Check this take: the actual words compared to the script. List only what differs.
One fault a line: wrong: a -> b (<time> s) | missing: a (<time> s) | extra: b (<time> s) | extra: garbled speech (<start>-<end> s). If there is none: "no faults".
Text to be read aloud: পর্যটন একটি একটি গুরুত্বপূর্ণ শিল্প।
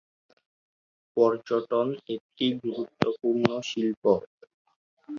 missing: একটি (2.5 s)